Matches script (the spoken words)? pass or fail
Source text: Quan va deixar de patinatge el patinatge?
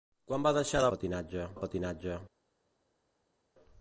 pass